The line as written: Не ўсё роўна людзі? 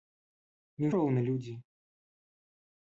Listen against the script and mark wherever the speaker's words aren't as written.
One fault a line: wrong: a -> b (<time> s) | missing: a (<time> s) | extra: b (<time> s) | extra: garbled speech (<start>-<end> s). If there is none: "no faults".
missing: ўсё (0.9 s)